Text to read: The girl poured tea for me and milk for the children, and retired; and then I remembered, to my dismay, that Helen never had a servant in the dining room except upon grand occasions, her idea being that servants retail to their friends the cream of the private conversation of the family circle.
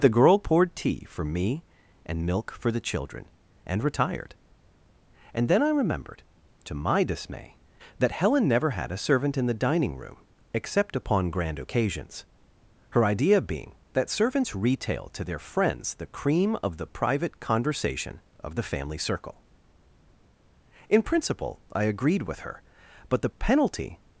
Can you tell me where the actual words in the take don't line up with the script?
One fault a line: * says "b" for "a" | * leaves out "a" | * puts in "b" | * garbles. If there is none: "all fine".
* puts in "In principle I agreed with her but the penalty"